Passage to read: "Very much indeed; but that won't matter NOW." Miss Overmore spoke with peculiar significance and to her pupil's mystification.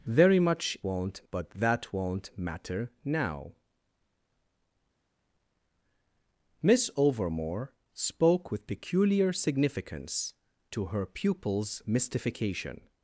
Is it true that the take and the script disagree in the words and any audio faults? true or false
true